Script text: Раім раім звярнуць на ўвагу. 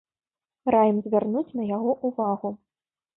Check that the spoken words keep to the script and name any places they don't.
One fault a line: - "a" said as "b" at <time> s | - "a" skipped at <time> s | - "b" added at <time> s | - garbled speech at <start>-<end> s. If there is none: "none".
- "раім" skipped at 1.0 s
- "яго" added at 1.8 s